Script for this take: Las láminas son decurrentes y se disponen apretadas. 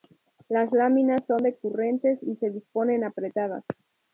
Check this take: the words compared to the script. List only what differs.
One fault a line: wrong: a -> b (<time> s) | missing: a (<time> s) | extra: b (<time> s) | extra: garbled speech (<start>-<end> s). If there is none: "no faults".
no faults